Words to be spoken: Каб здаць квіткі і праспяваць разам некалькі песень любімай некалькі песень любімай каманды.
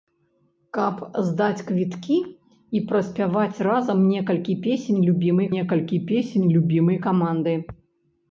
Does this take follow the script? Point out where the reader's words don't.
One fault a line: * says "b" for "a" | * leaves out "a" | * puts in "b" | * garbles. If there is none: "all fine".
all fine